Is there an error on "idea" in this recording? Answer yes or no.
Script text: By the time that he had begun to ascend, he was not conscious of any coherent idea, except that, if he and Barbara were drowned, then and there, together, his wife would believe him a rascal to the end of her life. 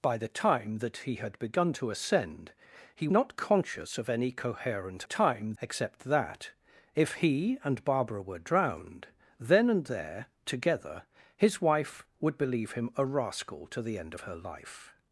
yes